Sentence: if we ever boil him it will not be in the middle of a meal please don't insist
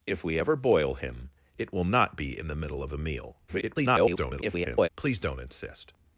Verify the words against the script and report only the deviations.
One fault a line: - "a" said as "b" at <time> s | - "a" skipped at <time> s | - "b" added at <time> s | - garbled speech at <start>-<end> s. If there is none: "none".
- garbled speech at 3.5-4.9 s